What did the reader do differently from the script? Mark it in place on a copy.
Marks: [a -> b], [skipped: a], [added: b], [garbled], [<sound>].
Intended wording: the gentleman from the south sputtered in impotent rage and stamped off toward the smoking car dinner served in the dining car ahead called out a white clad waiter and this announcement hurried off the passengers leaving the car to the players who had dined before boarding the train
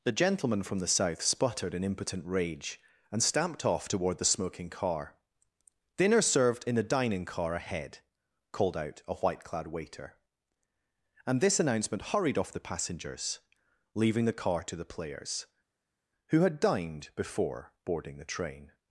the gentleman from the south sputtered in impotent rage and stamped off toward the smoking car dinner served in the dining car ahead called out a white clad waiter and this announcement hurried off the passengers leaving the car to the players who had dined before boarding the train